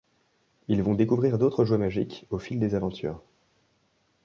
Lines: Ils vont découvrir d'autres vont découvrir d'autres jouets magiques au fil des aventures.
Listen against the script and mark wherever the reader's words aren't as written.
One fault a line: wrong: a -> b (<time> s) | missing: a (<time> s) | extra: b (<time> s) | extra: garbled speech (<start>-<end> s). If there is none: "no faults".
missing: vont découvrir d'autres (1.6 s)